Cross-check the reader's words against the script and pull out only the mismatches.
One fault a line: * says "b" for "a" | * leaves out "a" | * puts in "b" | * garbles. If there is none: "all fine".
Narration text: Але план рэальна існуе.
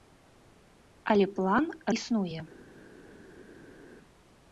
* leaves out "рэальна"